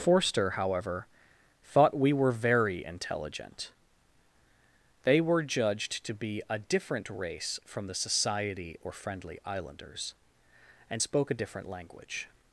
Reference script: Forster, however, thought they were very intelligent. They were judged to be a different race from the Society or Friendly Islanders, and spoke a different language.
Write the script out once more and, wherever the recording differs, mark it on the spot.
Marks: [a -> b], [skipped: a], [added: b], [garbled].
Forster, however, thought [they -> we] were very intelligent. They were judged to be a different race from the Society or Friendly Islanders, and spoke a different language.